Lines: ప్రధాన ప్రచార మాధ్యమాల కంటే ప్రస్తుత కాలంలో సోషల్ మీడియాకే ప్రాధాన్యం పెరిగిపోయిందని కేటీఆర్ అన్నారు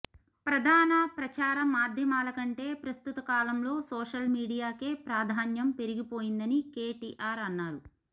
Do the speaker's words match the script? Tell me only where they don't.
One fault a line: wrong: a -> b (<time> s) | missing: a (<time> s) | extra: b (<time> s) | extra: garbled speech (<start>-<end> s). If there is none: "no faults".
no faults